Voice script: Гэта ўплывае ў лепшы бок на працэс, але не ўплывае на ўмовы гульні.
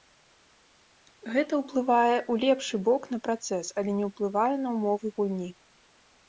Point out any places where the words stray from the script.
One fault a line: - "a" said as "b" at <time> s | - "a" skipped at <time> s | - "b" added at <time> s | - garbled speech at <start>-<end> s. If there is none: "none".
none